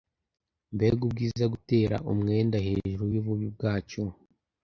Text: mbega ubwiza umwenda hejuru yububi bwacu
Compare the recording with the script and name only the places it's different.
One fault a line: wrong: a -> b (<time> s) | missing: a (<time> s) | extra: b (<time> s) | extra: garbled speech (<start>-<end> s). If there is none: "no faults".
extra: gutera (1.5 s)